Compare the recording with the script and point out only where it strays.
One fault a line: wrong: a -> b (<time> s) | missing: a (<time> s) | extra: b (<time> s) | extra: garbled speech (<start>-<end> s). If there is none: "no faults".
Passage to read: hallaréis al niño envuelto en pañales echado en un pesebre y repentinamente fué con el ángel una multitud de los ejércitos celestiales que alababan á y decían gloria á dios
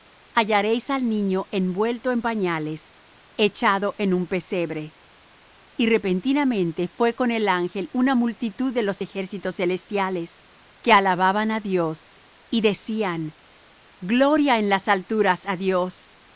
extra: dios (11.6 s)
extra: en las alturas (14.6 s)